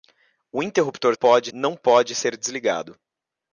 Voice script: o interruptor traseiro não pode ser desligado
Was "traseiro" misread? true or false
true